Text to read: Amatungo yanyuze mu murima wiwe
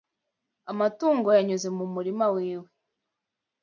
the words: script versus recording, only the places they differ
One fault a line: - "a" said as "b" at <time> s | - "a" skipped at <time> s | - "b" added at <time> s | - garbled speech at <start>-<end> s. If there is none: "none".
none